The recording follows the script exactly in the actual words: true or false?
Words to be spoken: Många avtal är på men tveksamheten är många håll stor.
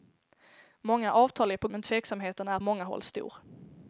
true